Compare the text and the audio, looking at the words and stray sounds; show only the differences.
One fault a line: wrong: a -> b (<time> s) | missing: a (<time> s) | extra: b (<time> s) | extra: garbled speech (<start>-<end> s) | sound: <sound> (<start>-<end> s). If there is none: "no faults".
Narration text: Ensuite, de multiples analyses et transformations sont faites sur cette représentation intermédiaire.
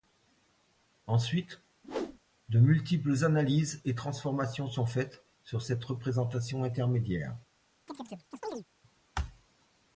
sound: whoosh (1.8-2.2 s)
sound: chirp (7.9-8.6 s)